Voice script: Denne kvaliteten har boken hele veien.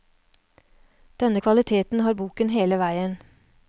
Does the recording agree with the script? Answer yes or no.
yes